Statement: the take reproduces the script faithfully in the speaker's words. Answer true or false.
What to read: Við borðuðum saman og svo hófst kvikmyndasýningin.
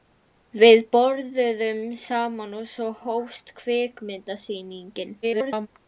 false